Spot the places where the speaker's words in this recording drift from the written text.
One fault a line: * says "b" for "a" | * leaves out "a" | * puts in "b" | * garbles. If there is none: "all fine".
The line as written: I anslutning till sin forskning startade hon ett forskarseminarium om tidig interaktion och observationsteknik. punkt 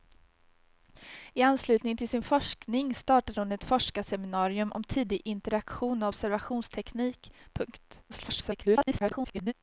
* garbles